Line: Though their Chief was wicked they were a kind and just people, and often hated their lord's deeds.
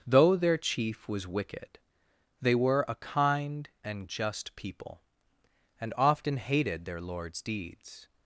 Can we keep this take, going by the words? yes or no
yes